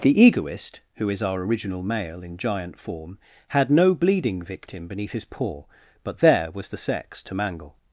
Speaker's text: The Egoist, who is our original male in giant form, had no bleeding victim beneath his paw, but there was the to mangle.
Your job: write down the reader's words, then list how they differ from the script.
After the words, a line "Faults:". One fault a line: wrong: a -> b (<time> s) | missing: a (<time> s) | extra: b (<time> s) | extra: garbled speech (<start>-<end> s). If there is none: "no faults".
The Egoist, who is our original male in giant form, had no bleeding victim beneath his paw, but there was the sex to mangle.
Faults:
extra: sex (6.8 s)